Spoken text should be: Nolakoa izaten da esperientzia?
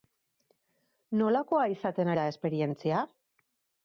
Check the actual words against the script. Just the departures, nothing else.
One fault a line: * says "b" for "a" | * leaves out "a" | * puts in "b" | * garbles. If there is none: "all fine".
all fine